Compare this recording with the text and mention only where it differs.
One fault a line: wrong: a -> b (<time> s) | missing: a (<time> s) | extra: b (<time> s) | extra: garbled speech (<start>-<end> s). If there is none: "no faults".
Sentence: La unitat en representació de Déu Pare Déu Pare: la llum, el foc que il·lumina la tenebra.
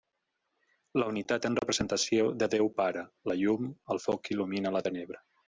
missing: Déu Pare (3.0 s)